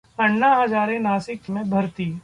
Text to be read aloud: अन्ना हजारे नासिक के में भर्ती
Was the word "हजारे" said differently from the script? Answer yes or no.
no